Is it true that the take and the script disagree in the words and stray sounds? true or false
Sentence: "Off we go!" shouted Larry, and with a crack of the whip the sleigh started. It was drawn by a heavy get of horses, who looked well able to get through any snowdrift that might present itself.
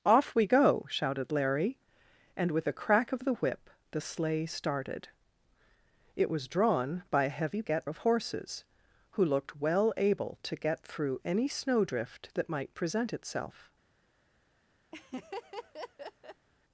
true